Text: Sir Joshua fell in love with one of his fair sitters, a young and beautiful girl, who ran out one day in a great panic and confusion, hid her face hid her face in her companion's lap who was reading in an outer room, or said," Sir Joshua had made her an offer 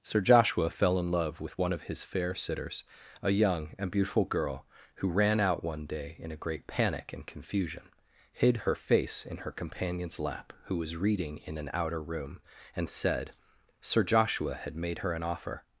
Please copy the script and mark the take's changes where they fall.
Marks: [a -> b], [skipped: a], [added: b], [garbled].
Sir Joshua fell in love with one of his fair sitters, a young and beautiful girl, who ran out one day in a great panic and confusion, hid her face [skipped: hid her face] in her companion's lap who was reading in an outer room, [or -> and] said," Sir Joshua had made her an offer